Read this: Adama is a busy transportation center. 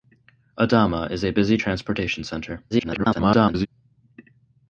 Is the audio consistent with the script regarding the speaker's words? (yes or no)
no